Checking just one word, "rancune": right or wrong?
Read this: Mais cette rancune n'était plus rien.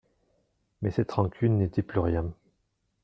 right